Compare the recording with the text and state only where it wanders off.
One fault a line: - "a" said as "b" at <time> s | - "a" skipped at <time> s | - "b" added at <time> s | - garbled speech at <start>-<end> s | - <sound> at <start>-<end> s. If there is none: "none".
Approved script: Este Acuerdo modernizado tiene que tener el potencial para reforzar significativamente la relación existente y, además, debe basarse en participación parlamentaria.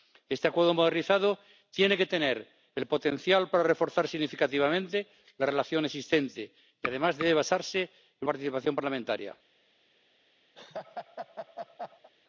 - laugh at 10.5-12.1 s